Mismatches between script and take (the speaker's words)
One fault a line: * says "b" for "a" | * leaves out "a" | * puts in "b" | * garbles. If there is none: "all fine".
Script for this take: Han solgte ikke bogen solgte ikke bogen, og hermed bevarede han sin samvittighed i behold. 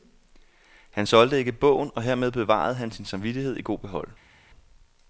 * leaves out "solgte ikke bogen"
* puts in "god"